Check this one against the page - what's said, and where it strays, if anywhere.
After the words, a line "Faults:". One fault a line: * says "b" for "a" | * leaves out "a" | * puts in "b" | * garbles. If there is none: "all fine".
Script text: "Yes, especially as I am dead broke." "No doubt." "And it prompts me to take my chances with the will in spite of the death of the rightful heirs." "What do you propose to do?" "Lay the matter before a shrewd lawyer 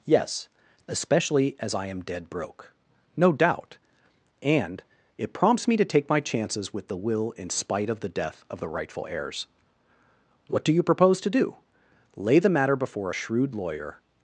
"Yes, especially as I am dead broke." "No doubt." "And it prompts me to take my chances with the will in spite of the death of the rightful heirs." "What do you propose to do?" "Lay the matter before a shrewd lawyer
Faults:
all fine